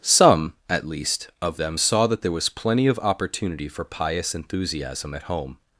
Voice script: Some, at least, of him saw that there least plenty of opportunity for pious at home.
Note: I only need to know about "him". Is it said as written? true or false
false